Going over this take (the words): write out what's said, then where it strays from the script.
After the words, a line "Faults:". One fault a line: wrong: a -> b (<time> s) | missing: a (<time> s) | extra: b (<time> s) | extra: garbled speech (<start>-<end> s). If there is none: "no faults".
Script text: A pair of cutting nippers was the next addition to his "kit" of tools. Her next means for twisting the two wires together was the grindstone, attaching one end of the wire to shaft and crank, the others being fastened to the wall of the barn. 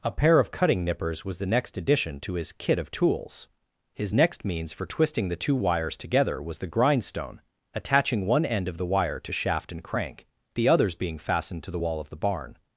A pair of cutting nippers was the next addition to his "kit" of tools. His next means for twisting the two wires together was the grindstone, attaching one end of the wire to shaft and crank, the others being fastened to the wall of the barn.
Faults:
wrong: Her -> His (3.9 s)